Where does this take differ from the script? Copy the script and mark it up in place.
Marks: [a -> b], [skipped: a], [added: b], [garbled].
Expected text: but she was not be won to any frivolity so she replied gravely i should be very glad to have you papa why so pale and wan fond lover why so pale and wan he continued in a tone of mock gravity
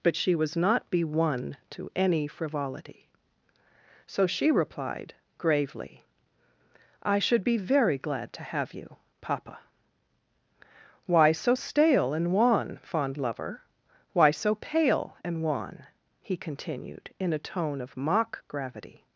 but she was not be won to any frivolity so she replied gravely i should be very glad to have you papa why so [pale -> stale] and wan fond lover why so pale and wan he continued in a tone of mock gravity